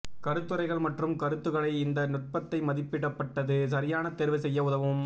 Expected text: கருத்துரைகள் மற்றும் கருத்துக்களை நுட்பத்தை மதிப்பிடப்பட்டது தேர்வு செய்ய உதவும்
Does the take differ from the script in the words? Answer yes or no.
yes